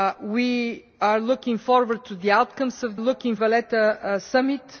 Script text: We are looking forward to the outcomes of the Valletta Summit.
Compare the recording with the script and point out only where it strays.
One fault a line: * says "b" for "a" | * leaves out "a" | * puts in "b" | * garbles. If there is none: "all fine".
* says "looking" for "the"